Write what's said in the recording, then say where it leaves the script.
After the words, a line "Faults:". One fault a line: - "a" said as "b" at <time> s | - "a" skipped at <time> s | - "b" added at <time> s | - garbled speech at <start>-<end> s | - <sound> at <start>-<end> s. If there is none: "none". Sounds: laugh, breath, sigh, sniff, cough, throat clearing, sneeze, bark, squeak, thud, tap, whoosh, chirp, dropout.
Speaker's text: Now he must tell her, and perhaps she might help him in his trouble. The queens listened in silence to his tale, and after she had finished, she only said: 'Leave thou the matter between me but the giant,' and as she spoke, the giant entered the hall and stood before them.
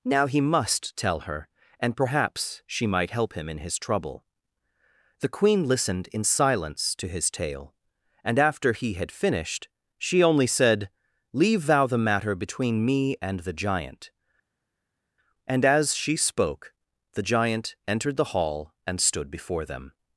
Now he must tell her, and perhaps she might help him in his trouble. The queen listened in silence to his tale, and after he had finished, she only said: 'Leave thou the matter between me and the giant,' and as she spoke, the giant entered the hall and stood before them.
Faults:
- "queens" said as "queen" at 5.3 s
- "she" said as "he" at 8.7 s
- "but" said as "and" at 13.2 s